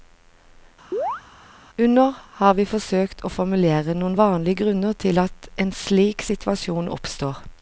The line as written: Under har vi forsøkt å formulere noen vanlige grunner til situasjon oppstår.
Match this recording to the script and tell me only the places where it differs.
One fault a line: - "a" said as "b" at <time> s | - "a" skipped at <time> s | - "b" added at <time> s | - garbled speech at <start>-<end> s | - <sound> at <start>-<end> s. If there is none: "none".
- chirp at 0.9-1.2 s
- "at en slik" added at 5.2 s